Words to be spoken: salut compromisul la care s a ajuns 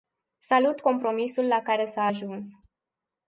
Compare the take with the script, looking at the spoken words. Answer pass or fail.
pass